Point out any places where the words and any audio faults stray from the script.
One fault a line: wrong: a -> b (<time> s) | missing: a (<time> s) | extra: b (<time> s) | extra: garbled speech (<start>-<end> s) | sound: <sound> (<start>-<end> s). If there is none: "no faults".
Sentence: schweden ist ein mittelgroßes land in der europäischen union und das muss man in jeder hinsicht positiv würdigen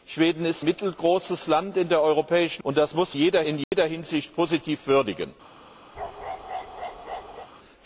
missing: ein (0.7 s)
missing: union (2.6 s)
wrong: man -> jeder (3.1 s)
sound: dropout (3.6-3.7 s)
sound: bark (5.9-7.5 s)